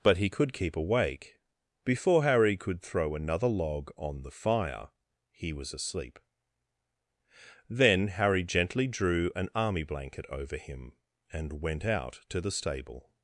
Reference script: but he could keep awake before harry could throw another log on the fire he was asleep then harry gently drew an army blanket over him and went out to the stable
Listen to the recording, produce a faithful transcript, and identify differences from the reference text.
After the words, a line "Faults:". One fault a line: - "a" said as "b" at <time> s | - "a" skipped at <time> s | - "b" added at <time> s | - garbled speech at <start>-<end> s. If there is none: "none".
but he could keep awake before harry could throw another log on the fire he was asleep then harry gently drew an army blanket over him and went out to the stable
Faults:
none